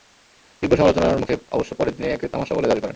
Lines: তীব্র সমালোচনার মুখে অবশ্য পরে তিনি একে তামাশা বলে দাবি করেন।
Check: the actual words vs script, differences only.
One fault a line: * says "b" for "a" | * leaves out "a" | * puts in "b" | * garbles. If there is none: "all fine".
all fine